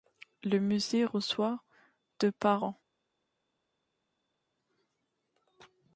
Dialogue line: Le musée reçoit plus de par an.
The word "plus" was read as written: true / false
false